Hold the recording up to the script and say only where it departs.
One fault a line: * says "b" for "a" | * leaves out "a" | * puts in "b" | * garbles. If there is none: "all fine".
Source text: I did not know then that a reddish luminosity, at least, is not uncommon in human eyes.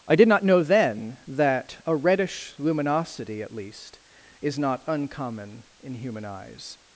all fine